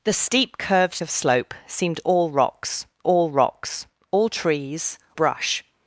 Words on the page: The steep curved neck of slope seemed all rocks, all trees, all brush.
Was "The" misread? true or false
false